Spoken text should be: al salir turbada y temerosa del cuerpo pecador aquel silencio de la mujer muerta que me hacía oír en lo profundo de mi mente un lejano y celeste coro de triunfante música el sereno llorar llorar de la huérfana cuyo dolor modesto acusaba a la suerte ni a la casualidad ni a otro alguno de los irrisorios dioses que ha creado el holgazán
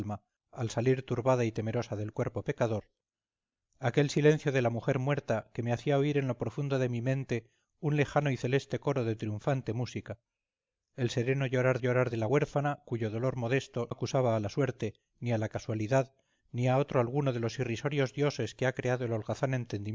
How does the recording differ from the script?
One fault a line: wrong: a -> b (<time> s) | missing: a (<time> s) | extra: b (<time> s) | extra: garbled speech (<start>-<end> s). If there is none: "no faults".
no faults